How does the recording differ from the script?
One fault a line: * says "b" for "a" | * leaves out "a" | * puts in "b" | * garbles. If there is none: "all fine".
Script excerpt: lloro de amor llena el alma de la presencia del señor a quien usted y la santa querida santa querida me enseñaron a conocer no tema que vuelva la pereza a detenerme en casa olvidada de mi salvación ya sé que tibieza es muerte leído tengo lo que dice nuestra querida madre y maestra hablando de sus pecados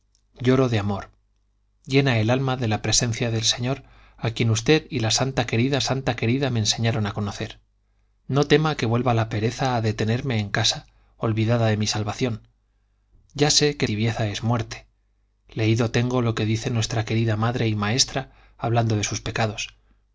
all fine